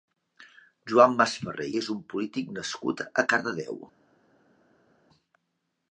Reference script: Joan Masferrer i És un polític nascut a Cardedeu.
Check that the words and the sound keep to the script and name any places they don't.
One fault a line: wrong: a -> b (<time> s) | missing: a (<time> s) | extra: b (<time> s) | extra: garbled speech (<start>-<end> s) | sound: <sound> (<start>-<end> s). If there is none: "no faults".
no faults